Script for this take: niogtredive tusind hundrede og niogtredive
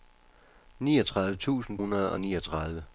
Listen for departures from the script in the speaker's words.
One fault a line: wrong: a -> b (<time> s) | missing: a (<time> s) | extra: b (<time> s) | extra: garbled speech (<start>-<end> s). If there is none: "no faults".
no faults